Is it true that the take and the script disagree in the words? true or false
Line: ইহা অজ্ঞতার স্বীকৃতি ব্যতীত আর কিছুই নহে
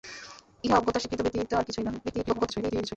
true